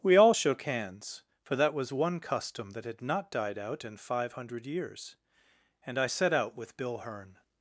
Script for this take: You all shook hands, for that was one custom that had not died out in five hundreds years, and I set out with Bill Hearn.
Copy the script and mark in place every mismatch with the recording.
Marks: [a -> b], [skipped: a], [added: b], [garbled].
[You -> We] all shook hands, for that was one custom that had not died out in five [hundreds -> hundred] years, and I set out with Bill Hearn.